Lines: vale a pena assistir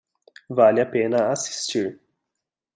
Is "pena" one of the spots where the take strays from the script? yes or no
no